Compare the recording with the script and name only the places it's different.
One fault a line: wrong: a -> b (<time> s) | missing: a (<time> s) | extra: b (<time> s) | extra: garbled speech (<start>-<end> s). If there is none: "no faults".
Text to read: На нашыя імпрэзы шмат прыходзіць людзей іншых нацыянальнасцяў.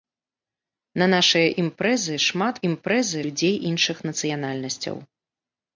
wrong: прыходзіць -> імпрэзы (2.7 s)